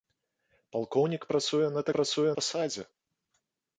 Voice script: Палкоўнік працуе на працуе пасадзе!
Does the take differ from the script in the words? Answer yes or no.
no